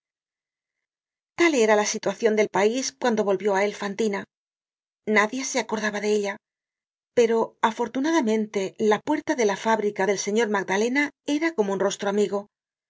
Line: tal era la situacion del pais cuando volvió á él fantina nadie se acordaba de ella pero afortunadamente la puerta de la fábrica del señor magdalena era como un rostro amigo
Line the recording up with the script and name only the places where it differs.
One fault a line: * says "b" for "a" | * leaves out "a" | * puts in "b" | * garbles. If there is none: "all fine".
all fine